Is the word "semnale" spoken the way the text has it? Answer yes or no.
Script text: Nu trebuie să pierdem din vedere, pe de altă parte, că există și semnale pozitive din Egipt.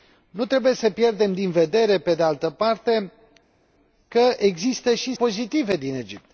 no